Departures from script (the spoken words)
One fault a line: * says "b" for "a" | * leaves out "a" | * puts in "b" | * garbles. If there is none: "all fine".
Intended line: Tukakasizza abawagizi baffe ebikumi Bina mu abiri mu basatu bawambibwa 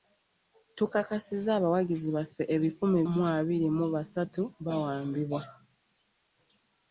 * leaves out "Bina"